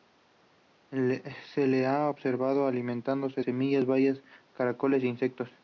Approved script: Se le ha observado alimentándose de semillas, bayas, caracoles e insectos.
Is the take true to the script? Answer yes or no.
no